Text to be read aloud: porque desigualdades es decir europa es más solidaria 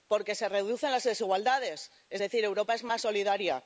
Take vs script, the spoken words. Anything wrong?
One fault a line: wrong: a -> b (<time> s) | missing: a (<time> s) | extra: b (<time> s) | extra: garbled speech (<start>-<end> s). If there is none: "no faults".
extra: se reducen las (0.3 s)